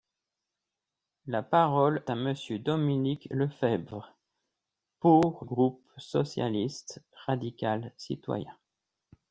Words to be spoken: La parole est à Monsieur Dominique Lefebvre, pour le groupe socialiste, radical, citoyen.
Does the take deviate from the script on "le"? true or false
true